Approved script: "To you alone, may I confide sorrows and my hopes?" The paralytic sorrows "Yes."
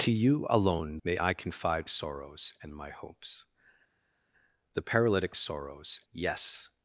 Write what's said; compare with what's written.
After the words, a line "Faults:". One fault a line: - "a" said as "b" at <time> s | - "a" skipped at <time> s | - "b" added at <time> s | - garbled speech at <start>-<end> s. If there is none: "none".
"To you alone, may I confide sorrows and my hopes?" The paralytic sorrows "Yes."
Faults:
none